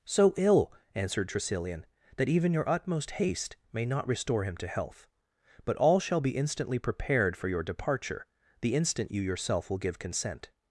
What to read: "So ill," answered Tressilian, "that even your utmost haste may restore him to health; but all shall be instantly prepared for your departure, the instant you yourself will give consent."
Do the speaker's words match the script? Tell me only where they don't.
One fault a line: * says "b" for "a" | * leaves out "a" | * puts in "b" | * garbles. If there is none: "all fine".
* puts in "not"